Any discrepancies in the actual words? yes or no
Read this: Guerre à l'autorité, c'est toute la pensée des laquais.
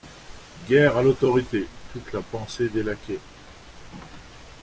yes